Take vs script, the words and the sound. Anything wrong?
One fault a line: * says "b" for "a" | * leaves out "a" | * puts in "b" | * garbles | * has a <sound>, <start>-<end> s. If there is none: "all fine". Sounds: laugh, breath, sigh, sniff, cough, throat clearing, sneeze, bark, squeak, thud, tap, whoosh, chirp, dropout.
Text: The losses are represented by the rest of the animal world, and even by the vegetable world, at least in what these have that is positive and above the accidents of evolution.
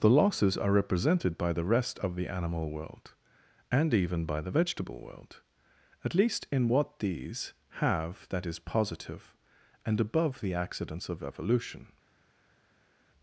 all fine